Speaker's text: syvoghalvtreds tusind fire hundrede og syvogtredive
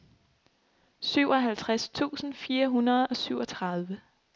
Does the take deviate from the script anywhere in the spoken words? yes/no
no